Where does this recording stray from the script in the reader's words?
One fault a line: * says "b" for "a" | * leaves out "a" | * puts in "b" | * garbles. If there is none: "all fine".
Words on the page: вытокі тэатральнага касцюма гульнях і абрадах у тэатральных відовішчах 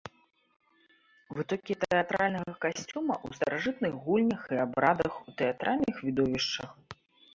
* puts in "ў старажытных"